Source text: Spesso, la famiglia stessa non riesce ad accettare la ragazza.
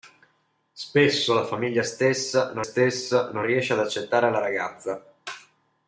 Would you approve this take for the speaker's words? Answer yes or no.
no